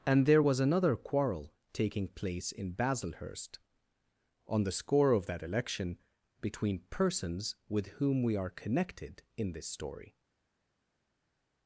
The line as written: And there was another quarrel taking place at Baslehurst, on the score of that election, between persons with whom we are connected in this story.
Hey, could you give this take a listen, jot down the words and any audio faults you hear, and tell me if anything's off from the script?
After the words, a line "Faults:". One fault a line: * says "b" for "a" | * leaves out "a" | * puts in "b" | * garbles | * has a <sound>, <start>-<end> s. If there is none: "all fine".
And there was another quarrel taking place in Baslehurst, on the score of that election, between persons with whom we are connected in this story.
Faults:
* says "in" for "at"